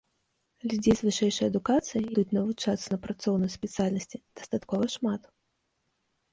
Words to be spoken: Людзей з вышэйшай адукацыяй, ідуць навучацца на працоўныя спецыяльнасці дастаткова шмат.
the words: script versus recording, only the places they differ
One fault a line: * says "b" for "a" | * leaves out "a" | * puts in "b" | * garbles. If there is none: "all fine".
all fine